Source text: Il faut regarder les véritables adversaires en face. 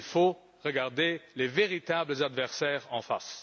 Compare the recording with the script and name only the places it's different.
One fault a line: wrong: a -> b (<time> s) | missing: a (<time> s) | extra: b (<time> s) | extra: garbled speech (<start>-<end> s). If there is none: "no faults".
no faults